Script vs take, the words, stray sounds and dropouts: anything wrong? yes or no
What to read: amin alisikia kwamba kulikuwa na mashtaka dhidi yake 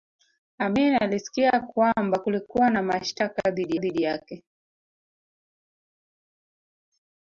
yes